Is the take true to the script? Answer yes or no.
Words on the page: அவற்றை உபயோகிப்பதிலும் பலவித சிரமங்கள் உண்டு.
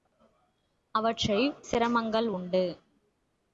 no